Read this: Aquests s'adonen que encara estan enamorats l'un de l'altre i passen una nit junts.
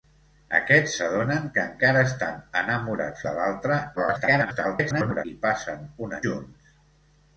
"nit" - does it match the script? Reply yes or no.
no